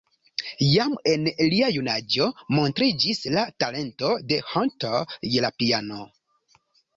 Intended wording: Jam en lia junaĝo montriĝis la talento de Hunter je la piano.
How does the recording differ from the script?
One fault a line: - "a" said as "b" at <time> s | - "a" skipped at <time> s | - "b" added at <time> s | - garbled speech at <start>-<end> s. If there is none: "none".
none